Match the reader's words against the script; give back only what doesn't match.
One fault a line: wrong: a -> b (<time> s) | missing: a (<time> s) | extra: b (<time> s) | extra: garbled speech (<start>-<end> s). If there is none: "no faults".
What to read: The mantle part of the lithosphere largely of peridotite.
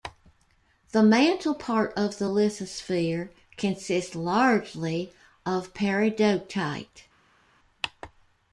extra: consists (3.6 s)